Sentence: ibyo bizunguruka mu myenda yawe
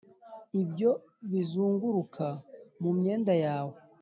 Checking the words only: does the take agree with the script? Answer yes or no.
yes